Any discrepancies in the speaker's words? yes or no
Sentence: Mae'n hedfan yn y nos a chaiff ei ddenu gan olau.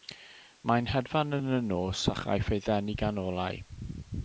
no